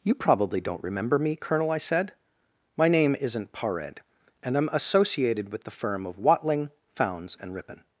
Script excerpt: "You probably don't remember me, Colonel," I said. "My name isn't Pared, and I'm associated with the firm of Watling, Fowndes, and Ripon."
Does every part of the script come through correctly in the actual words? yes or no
yes